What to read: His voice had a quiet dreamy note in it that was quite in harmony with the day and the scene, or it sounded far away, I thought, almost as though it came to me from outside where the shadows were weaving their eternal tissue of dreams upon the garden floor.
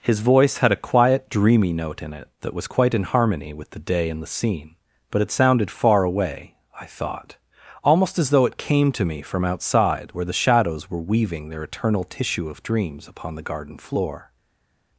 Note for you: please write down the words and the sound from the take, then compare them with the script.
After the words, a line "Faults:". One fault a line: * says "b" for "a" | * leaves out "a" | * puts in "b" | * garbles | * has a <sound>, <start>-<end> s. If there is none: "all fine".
His voice had a quiet dreamy note in it that was quite in harmony with the day and the scene, but it sounded far away, I thought, almost as though it came to me from outside where the shadows were weaving their eternal tissue of dreams upon the garden floor.
Faults:
* says "but" for "or"